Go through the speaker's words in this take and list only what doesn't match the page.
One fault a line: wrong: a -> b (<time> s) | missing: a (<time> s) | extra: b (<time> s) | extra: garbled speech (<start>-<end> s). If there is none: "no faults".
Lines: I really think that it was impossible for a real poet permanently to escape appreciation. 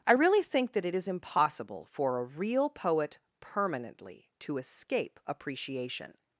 wrong: was -> is (0.9 s)